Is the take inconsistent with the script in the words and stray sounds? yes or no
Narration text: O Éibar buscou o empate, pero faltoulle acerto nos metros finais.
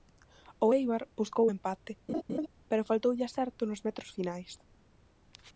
yes